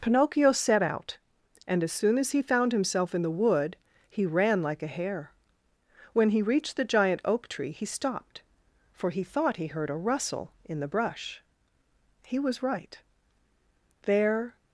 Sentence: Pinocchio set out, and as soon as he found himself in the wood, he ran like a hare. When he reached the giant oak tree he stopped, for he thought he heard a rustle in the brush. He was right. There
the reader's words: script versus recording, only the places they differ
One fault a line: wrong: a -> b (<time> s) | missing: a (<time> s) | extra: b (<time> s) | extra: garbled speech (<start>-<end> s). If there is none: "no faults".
no faults